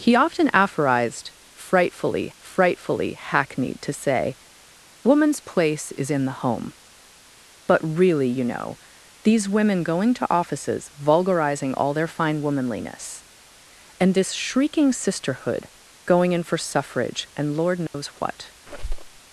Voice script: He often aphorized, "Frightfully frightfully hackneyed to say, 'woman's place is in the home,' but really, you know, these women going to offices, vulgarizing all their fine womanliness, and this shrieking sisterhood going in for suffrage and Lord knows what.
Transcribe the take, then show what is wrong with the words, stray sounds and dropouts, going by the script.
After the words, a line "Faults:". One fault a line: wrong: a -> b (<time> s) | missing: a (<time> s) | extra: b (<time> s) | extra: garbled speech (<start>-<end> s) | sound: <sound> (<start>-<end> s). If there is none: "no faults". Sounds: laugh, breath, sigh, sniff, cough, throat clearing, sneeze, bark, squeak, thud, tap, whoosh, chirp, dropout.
He often aphorized, "Frightfully frightfully hackneyed to say, 'woman's place is in the home,' but really, you know, these women going to offices, vulgarizing all their fine womanliness, and this shrieking sisterhood going in for suffrage and Lord knows what.
Faults:
sound: dropout (17.9-17.9 s)
sound: squeak (18.7-19.2 s)